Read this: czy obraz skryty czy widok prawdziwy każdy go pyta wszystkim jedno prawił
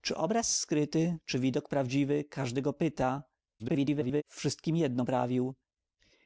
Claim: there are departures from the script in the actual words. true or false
true